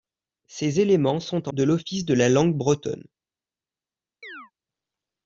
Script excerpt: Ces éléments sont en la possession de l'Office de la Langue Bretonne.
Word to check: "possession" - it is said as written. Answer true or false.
false